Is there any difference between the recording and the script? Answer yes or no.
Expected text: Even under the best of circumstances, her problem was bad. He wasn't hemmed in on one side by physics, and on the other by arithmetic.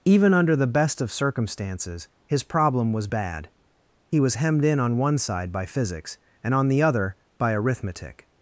yes